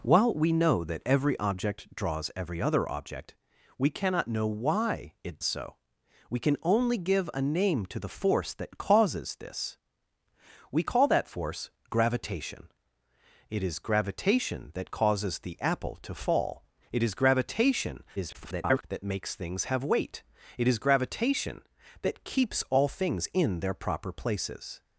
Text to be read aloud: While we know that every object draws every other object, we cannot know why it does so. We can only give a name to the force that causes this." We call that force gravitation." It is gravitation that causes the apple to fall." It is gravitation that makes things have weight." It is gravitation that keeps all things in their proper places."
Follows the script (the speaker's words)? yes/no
no